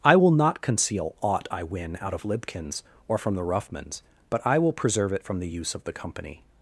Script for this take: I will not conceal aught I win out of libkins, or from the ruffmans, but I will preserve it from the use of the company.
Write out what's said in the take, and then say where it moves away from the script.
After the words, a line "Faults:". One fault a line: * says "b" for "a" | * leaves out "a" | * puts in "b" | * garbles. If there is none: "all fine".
I will not conceal aught I win out of libkins, or from the ruffmans, but I will preserve it from the use of the company.
Faults:
all fine